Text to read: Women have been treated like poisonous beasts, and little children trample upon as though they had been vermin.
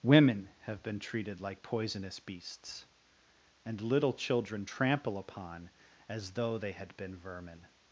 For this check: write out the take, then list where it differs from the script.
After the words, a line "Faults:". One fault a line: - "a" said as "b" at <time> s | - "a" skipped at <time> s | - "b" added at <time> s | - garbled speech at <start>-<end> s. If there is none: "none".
Women have been treated like poisonous beasts, and little children trample upon as though they had been vermin.
Faults:
none